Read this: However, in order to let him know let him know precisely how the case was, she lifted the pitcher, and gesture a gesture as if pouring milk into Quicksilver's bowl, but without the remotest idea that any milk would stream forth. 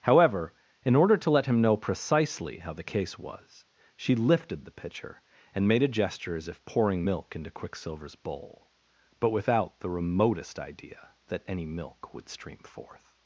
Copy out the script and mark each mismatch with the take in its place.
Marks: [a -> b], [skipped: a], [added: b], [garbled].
However, in order to let him know [skipped: let him know] precisely how the case was, she lifted the pitcher, and [gesture -> made] a gesture as if pouring milk into Quicksilver's bowl, but without the remotest idea that any milk would stream forth.